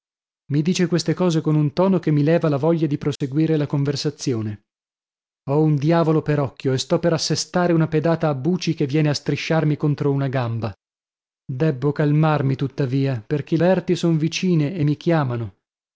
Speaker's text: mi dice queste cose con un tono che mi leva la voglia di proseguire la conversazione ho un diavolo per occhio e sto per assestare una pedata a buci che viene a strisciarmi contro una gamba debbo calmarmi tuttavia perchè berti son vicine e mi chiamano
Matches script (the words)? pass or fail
pass